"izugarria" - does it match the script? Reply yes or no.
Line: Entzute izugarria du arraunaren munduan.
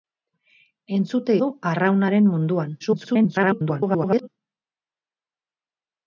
no